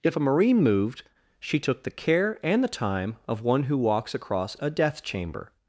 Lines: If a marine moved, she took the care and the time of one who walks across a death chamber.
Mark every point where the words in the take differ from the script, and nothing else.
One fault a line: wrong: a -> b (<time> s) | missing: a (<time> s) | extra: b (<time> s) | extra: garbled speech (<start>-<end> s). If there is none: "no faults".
no faults